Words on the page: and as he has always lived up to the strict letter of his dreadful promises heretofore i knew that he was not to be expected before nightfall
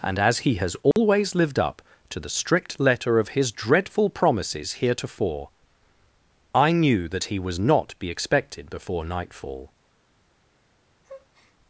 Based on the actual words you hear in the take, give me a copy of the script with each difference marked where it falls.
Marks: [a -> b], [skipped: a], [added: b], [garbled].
and as he has always lived up to the strict letter of his dreadful promises heretofore i knew that he was not [skipped: to] be expected before nightfall